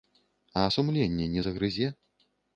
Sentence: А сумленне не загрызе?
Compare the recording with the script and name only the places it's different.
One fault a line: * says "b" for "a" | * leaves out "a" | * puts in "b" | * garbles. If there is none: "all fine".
all fine